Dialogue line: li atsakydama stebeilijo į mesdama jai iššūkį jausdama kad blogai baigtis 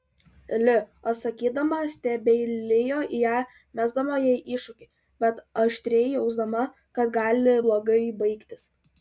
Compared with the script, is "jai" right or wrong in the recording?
right